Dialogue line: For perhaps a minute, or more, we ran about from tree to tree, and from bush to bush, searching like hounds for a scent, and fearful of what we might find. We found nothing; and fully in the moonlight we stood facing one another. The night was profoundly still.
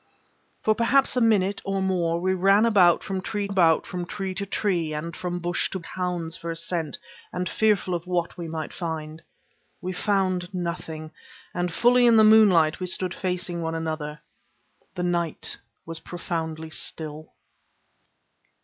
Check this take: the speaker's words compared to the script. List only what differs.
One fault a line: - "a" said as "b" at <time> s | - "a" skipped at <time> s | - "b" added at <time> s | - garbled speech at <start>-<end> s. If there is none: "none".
- "about from tree" added at 3.5 s
- "bush searching like" skipped at 5.8 s